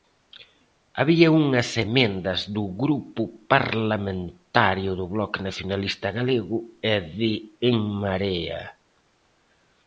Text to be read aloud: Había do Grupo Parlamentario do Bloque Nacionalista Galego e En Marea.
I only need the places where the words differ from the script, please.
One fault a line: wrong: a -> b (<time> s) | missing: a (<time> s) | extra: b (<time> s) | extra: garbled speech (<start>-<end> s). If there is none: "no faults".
extra: unhas emendas (1.4 s)
extra: de (7.2 s)